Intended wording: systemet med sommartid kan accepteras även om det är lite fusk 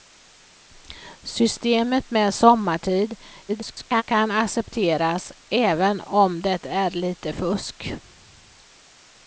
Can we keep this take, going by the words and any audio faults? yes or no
no